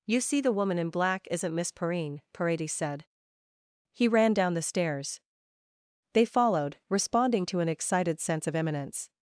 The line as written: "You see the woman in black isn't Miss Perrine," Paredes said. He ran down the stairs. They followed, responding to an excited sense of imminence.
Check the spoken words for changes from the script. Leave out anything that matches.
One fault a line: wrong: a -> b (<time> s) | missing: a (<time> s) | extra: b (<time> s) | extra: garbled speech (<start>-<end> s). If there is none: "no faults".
no faults